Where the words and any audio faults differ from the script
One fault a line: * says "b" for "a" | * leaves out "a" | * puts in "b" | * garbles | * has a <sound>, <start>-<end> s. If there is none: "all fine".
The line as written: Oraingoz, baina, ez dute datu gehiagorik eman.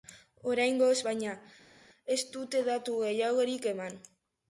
all fine